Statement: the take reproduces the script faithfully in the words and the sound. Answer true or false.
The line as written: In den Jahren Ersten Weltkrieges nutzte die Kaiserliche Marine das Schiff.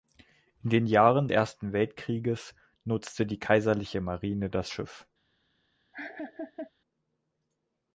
false